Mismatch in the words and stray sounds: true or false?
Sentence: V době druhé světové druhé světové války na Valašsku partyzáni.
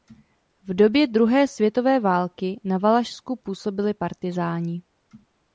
true